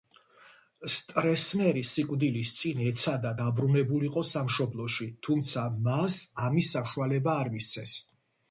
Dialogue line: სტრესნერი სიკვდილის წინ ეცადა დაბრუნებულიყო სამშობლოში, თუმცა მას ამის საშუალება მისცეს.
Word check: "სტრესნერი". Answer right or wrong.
right